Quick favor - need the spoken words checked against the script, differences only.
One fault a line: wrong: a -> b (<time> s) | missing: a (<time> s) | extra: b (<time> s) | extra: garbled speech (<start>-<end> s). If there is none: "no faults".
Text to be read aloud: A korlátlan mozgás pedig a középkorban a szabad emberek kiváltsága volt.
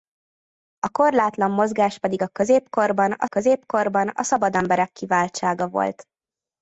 extra: középkorban a (3.2 s)